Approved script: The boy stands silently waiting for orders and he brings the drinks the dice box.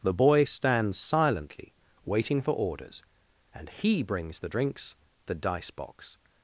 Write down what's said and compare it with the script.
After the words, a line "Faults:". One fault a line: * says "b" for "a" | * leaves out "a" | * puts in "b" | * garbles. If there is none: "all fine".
The boy stands silently waiting for orders and he brings the drinks the dice box.
Faults:
all fine